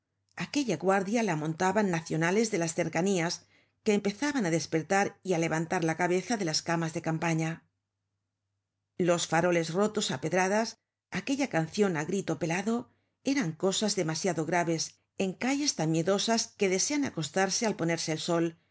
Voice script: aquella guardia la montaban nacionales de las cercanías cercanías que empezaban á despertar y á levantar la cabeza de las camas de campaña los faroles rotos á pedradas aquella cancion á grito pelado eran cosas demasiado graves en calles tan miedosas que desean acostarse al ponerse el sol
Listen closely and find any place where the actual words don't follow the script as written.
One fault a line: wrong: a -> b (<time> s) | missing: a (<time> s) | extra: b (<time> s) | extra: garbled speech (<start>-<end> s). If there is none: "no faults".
missing: cercanías (3.3 s)